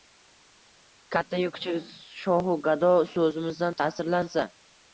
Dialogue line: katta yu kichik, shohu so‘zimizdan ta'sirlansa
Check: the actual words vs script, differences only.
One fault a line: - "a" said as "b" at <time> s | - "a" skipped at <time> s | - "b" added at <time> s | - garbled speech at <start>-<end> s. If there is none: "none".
- "gado" added at 2.7 s